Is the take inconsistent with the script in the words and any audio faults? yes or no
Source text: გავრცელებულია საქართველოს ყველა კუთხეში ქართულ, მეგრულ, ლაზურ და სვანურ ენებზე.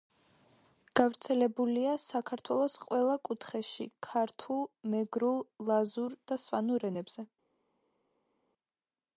no